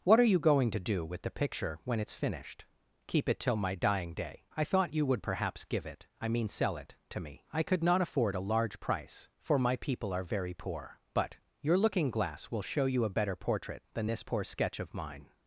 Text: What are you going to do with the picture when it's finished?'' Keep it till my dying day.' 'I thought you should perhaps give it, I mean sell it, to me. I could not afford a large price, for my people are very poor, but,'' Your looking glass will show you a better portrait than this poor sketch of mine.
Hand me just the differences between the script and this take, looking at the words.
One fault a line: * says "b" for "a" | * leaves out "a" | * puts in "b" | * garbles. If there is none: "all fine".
* says "would" for "should"